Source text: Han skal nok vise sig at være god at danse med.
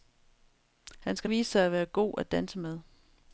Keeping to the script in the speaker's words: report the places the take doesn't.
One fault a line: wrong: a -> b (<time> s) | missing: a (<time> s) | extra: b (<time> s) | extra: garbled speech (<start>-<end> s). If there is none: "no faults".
missing: nok (1.3 s)